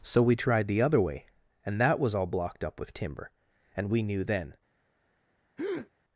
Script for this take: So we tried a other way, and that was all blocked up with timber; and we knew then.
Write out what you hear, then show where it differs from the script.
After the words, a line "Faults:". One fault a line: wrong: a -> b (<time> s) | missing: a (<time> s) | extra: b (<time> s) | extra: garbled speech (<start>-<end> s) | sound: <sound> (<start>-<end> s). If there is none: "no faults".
So we tried the other way, and that was all blocked up with timber; and we knew then.
Faults:
wrong: a -> the (0.7 s)
sound: breath (5.6-5.9 s)